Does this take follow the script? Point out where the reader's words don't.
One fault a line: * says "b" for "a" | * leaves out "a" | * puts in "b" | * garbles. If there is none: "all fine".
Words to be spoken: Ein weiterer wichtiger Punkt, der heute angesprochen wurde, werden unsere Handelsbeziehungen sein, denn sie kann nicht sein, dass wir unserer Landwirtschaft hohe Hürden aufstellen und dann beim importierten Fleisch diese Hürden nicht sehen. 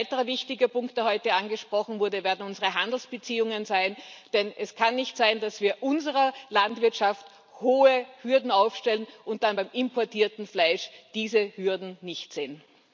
* says "es" for "sie"